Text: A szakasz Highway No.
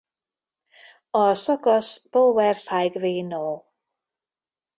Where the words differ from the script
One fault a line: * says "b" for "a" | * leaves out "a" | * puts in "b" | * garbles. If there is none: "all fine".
* puts in "Powers"